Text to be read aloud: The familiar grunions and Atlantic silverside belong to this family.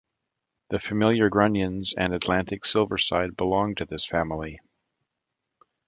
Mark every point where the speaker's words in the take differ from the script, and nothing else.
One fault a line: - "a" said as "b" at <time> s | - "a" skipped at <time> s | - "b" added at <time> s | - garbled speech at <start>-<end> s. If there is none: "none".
none